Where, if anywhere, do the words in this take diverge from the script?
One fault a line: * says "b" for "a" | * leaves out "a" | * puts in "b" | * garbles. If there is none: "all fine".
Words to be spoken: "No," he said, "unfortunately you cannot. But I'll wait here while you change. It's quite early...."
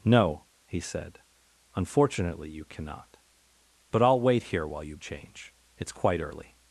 all fine